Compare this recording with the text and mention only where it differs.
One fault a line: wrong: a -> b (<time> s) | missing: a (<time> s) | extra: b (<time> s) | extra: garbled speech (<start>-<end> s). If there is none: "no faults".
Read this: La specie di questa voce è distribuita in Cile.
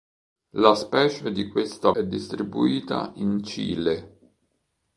missing: voce (1.9 s)